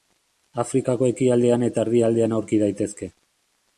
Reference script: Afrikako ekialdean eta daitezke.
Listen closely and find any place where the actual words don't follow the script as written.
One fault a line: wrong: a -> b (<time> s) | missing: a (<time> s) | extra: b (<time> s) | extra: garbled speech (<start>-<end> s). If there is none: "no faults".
extra: erdialdean aurki (1.9 s)